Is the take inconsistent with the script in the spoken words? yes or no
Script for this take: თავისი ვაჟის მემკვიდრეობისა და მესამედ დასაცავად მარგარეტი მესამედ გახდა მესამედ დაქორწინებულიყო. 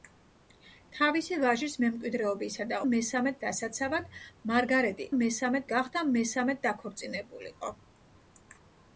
no